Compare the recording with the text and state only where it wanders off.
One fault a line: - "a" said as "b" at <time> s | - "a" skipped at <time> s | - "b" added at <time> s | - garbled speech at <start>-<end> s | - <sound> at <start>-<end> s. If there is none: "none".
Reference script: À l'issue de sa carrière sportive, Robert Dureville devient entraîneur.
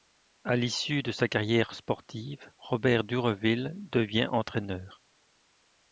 none